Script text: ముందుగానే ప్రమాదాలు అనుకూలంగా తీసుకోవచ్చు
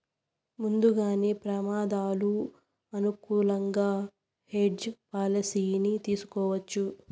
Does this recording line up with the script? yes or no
no